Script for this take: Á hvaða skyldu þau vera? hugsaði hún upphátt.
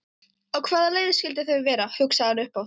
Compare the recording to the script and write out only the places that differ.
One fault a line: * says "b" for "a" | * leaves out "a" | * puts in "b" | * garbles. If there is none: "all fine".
* puts in "leið"
* says "hann" for "hún"